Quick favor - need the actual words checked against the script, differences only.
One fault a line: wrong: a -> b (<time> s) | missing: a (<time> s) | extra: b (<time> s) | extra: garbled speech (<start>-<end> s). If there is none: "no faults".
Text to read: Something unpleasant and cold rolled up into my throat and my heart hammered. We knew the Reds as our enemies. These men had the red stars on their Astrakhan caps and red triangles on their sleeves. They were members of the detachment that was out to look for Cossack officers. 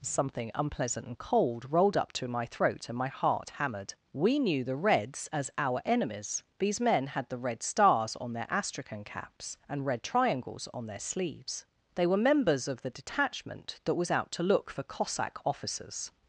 wrong: into -> to (2.1 s)